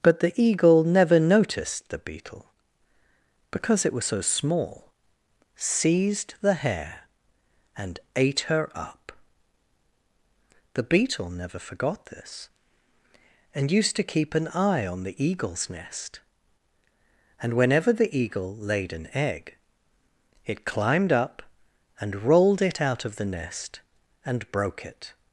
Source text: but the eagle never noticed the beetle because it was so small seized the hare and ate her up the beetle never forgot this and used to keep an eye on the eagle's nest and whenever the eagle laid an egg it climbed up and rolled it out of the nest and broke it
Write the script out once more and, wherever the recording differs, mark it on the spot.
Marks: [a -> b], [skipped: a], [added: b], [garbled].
but the eagle never noticed the beetle because it was so small seized the hare and ate her up the beetle never forgot this and used to keep an eye on the eagle's nest and whenever the eagle laid an egg it climbed up and rolled it out of the nest and broke it